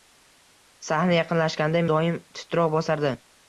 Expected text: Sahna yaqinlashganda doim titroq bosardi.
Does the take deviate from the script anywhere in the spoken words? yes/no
no